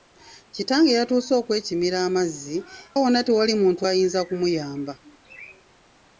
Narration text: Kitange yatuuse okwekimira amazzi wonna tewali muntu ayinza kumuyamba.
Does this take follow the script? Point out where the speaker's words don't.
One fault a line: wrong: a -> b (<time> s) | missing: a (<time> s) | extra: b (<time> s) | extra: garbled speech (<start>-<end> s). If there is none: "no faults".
no faults